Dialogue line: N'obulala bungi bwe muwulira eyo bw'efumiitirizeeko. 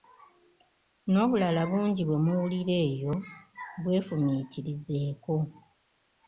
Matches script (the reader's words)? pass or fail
pass